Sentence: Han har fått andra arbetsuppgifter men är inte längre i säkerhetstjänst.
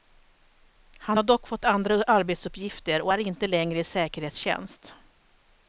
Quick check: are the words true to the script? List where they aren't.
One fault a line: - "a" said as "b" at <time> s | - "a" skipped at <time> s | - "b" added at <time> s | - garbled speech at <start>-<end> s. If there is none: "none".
- "dock" added at 1.2 s
- "men" said as "och" at 3.0 s